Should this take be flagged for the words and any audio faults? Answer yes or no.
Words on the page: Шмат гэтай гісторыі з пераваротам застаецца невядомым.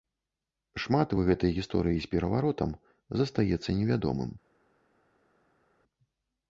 yes